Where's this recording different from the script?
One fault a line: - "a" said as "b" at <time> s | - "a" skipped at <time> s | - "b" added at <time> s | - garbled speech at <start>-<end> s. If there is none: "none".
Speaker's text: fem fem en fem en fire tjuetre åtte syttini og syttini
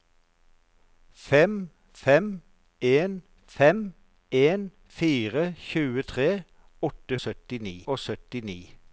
none